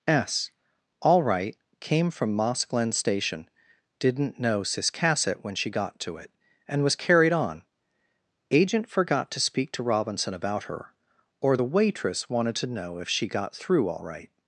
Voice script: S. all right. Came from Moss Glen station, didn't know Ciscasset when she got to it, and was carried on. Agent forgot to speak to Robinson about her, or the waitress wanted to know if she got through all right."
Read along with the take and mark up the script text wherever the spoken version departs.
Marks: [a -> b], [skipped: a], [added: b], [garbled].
S. all right. Came from Moss Glen station, didn't know Ciscasset when she got to it, and was carried on. Agent forgot to speak to Robinson about her, or the waitress wanted to know if she got through all right."